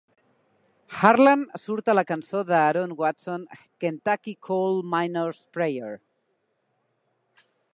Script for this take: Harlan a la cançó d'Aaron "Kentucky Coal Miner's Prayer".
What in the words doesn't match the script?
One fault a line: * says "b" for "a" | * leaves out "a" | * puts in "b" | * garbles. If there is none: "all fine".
* puts in "surt"
* puts in "Watson"